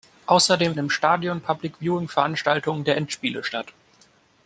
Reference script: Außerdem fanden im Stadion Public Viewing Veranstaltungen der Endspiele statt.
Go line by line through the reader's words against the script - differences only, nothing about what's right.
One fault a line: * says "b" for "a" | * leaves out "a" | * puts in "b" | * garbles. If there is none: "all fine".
* leaves out "fanden"